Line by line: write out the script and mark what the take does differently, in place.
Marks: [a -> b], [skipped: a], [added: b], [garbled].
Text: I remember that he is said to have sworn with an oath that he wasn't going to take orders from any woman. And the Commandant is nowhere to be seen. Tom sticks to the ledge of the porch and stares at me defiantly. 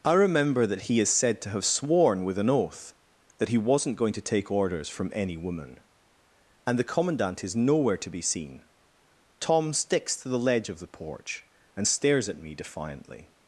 I remember that he is said to have sworn with an oath that he wasn't going to take orders from any woman. And the Commandant is nowhere to be seen. Tom sticks to the ledge of the porch and stares at me defiantly.